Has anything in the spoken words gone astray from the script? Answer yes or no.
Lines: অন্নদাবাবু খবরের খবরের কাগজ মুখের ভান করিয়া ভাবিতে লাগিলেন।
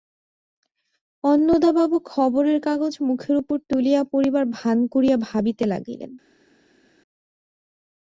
yes